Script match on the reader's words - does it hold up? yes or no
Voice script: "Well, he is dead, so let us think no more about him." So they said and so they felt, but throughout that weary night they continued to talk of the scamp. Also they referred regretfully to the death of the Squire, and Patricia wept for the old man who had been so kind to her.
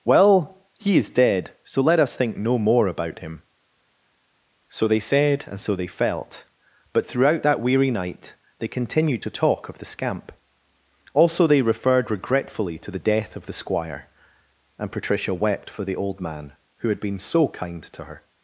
yes